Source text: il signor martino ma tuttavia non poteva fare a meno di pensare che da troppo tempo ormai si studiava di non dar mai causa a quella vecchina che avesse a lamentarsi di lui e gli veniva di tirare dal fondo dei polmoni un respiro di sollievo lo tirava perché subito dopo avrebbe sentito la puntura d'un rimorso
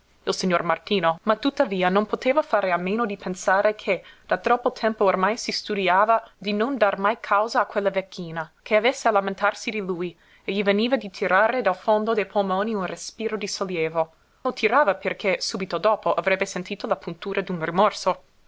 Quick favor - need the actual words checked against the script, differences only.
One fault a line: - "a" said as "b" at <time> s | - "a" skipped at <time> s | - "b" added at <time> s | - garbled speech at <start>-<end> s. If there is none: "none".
none